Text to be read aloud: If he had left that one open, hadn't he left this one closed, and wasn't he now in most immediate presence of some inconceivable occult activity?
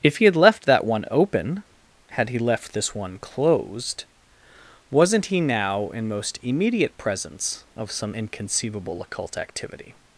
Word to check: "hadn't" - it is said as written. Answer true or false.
false